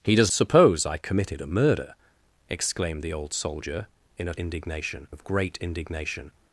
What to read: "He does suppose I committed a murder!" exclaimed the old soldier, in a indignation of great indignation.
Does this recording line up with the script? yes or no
yes